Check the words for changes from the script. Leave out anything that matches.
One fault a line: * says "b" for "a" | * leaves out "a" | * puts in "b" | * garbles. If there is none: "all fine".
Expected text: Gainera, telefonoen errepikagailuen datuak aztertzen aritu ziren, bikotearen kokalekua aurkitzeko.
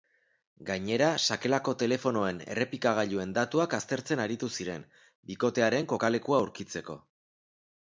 * puts in "sakelako"